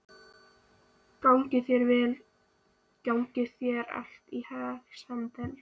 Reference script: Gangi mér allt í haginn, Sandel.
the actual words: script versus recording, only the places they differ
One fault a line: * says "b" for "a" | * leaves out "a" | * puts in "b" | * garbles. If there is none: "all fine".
* says "þér" for "mér"